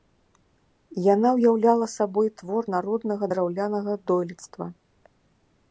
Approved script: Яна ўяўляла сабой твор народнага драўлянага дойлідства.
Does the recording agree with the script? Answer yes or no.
yes